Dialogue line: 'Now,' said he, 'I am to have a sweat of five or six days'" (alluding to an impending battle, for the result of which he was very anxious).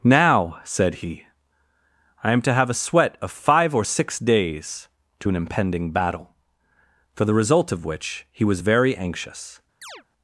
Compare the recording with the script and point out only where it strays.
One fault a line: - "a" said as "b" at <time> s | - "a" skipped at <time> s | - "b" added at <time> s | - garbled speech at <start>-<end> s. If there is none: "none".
- "alluding" skipped at 4.9 s